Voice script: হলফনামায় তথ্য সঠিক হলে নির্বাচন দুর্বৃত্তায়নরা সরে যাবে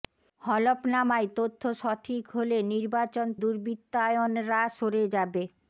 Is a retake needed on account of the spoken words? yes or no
no